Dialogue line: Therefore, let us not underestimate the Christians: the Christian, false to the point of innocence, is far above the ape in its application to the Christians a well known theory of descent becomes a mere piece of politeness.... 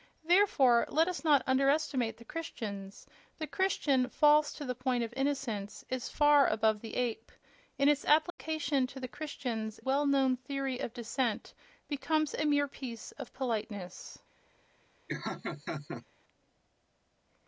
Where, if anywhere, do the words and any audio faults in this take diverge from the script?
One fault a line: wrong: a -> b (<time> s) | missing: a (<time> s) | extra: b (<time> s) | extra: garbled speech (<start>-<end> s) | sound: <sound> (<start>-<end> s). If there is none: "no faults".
sound: dropout (8.3-8.4 s)
missing: a (9.8 s)
sound: laugh (15.1-16.1 s)